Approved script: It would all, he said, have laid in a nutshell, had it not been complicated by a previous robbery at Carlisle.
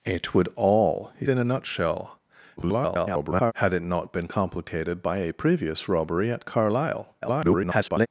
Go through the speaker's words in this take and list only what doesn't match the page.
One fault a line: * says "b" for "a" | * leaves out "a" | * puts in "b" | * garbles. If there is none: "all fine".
* leaves out "said have laid"
* garbles
* garbles